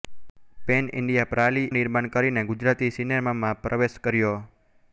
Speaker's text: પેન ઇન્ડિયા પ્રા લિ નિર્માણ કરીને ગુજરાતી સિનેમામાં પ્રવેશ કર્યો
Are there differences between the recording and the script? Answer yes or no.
no